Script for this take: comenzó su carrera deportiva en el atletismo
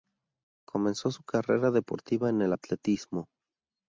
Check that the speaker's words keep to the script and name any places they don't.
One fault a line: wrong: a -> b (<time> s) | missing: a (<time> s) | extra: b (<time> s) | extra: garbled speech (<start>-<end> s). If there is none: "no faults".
no faults